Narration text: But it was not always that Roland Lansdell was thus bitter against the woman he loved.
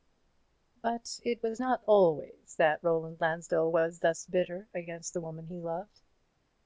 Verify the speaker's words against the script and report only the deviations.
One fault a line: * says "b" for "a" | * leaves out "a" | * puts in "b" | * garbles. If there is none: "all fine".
all fine